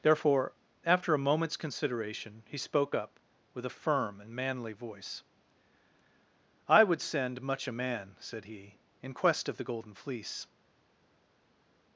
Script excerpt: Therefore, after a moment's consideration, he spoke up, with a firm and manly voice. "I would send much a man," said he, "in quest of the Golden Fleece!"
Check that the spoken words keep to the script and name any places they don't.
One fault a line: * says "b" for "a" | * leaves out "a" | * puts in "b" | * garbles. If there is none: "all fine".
all fine